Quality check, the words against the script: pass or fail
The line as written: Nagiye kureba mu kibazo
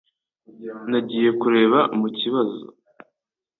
pass